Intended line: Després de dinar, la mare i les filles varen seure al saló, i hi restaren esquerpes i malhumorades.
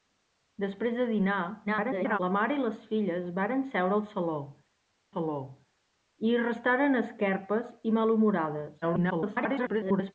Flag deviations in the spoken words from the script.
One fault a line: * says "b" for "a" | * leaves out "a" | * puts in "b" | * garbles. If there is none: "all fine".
* garbles
* puts in "saló"
* garbles